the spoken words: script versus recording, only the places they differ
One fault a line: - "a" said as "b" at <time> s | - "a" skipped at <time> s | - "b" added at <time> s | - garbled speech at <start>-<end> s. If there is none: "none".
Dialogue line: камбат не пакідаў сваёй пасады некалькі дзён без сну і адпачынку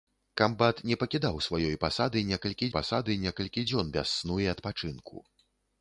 - "пасады некалькі" added at 2.8 s